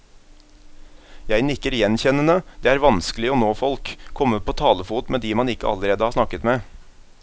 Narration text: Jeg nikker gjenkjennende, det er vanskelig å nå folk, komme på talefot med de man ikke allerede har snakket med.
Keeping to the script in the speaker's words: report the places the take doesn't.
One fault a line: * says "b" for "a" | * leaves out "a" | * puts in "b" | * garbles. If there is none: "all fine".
all fine